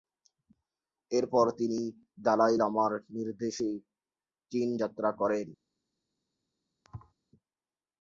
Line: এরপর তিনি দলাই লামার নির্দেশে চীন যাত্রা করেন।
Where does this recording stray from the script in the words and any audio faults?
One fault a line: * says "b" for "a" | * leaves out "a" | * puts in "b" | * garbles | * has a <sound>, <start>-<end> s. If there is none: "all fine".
* has a thud, 6.8-7.1 s